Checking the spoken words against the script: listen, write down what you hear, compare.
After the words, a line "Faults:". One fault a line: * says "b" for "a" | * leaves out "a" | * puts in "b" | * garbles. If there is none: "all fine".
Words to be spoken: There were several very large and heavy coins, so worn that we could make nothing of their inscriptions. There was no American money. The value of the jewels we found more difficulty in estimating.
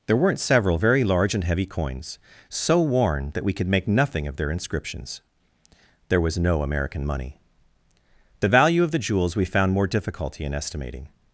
There weren't several very large and heavy coins, so worn that we could make nothing of their inscriptions. There was no American money. The value of the jewels we found more difficulty in estimating.
Faults:
* says "weren't" for "were"